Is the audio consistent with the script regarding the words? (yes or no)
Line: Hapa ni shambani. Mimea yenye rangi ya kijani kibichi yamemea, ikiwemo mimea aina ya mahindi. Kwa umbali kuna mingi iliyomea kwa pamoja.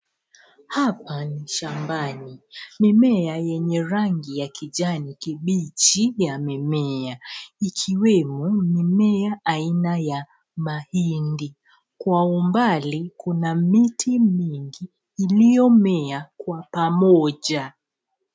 no